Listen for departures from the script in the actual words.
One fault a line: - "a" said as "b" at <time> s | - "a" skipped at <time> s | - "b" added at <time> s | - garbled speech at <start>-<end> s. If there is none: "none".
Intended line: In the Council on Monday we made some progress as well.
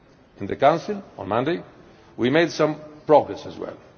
none